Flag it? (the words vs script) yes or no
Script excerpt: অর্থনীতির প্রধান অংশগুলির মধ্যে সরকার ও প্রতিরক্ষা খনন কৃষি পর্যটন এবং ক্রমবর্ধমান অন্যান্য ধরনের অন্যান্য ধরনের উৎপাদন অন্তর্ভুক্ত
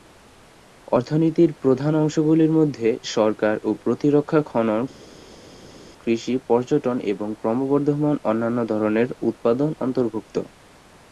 yes